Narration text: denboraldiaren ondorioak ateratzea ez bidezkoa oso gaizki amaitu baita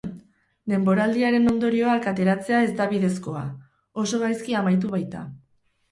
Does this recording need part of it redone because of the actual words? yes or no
yes